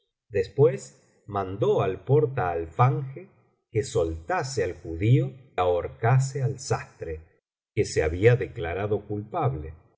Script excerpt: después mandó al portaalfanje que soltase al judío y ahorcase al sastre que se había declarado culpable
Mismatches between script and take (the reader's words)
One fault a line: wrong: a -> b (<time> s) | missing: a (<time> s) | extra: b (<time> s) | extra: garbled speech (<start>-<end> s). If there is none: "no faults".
missing: y (5.3 s)